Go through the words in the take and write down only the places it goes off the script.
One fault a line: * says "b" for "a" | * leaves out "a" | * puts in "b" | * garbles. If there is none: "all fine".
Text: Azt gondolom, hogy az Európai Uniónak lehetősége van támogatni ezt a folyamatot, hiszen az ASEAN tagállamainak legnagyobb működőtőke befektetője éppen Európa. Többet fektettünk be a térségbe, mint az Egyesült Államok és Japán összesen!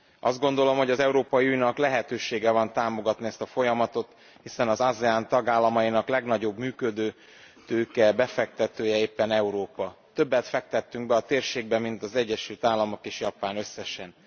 all fine